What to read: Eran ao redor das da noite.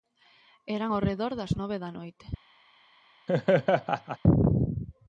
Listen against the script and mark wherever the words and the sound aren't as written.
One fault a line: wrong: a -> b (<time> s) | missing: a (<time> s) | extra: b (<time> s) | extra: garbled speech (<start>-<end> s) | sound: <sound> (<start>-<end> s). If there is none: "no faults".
extra: nove (1.6 s)
sound: laugh (3.3-4.2 s)